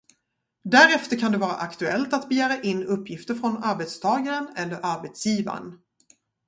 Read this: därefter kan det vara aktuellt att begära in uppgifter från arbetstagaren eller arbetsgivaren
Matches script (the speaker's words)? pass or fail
pass